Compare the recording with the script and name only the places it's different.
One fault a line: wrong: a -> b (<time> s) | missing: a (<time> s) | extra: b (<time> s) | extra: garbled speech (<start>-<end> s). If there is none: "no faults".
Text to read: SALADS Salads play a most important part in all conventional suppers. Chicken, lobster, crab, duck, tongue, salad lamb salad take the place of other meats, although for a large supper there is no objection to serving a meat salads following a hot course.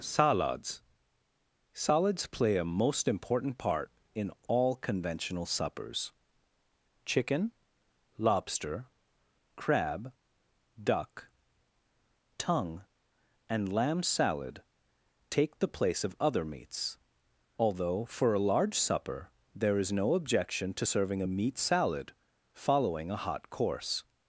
wrong: salad -> and (13.5 s)
wrong: salads -> salad (21.6 s)